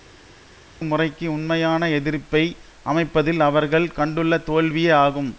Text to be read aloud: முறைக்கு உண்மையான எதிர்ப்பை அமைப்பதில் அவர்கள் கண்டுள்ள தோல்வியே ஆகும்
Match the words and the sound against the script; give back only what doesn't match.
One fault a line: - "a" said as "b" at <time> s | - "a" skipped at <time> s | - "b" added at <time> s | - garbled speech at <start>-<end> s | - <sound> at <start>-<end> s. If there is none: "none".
none